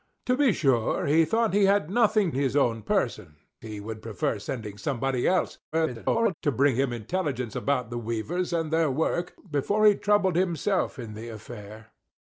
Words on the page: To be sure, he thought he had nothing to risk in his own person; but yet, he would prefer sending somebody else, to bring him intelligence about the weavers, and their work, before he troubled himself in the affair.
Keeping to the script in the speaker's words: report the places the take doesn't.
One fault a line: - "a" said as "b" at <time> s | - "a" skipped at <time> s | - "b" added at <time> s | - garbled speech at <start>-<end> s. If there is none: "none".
- "to risk in" skipped at 2.3 s
- "but yet" skipped at 3.3 s
- garbled speech at 5.7-6.3 s